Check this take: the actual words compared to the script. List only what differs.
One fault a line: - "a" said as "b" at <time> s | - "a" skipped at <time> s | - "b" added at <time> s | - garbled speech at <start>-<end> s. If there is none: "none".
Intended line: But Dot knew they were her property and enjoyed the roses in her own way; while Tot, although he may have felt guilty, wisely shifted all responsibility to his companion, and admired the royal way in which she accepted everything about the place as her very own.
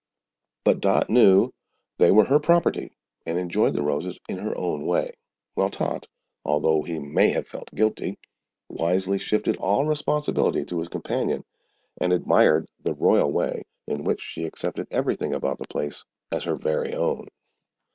none